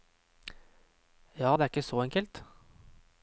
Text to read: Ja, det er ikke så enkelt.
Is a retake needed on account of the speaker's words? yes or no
no